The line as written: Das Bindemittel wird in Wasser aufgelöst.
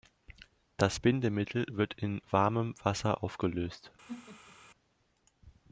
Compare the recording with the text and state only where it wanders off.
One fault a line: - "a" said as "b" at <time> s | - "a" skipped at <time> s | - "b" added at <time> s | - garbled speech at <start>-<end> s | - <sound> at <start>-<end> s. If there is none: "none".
- "warmem" added at 2.3 s
- laugh at 4.1-4.6 s